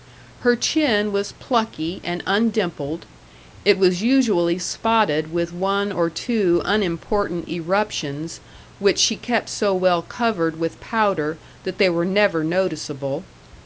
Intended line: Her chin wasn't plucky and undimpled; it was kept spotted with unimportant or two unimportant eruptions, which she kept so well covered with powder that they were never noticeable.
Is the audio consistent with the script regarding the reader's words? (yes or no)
no